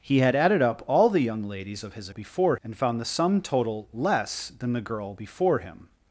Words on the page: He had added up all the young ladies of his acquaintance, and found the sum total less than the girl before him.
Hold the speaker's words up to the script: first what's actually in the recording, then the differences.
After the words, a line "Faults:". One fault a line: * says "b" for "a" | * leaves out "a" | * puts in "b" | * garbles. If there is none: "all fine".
He had added up all the young ladies of his before, and found the sum total less than the girl before him.
Faults:
* says "before" for "acquaintance"